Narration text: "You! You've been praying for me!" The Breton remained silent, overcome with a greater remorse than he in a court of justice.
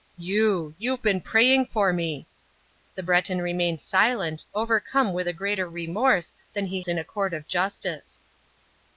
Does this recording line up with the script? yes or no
yes